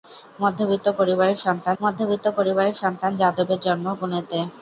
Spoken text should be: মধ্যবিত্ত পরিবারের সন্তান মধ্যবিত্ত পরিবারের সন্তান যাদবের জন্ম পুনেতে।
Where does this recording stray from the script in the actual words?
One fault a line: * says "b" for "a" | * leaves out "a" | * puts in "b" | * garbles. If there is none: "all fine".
all fine